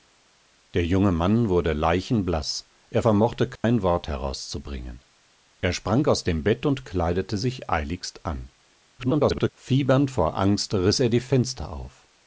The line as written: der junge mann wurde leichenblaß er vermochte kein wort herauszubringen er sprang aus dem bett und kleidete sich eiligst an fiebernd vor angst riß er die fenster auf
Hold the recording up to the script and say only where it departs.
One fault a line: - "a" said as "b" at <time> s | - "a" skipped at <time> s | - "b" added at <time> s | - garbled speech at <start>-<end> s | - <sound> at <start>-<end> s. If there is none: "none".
- dropout at 3.6-3.6 s
- garbled speech at 9.0-9.5 s